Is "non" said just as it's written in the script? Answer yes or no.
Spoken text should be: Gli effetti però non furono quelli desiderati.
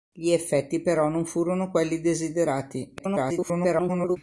yes